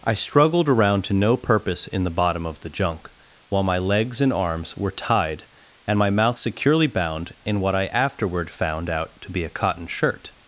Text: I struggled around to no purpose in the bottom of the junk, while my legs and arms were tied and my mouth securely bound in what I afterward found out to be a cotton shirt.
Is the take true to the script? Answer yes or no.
yes